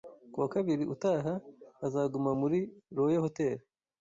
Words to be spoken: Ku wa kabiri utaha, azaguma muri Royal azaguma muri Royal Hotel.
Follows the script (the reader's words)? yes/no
no